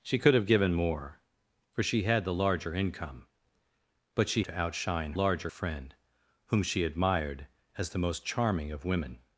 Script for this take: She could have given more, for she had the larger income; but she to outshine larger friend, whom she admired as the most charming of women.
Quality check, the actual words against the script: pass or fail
pass